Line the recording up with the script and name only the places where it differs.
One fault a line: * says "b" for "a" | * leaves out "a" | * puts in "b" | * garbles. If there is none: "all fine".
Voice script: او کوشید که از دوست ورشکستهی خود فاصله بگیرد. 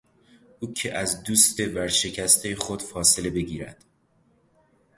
* leaves out "کوشید"